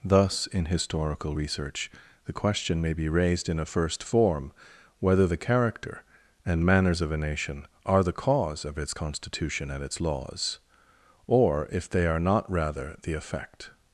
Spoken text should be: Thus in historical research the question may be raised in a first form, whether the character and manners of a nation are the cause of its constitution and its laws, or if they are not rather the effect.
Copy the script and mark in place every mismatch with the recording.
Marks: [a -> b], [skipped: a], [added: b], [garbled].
Thus in historical research the question may be raised in a first form, whether the character and manners of a nation are the cause of its constitution and its laws, or if they are not rather the effect.